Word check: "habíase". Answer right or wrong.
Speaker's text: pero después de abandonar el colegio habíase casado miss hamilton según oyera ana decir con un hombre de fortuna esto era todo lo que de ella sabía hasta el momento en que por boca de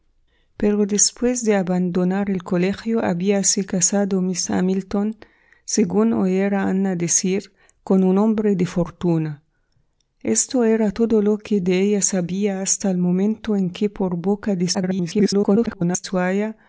right